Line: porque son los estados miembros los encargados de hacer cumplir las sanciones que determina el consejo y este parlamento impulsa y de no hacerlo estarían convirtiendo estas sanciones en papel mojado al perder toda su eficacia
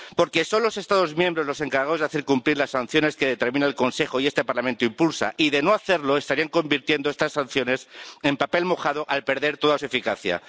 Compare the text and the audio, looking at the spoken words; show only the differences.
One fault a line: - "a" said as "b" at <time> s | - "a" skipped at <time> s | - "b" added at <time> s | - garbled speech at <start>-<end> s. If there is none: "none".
none